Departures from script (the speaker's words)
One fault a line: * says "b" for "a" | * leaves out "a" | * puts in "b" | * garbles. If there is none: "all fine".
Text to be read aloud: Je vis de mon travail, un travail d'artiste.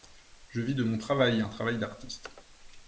all fine